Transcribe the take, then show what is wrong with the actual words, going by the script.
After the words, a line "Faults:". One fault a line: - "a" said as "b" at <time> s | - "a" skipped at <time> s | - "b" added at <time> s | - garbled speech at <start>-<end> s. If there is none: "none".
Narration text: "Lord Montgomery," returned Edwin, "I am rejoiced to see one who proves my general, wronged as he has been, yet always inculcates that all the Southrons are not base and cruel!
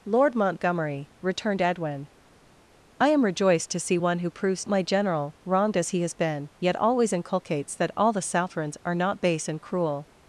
"Lord Montgomery," returned Edwin, "I am rejoiced to see one who proves my general, wronged as he has been, yet always inculcates that all the Southrons are not base and cruel!
Faults:
none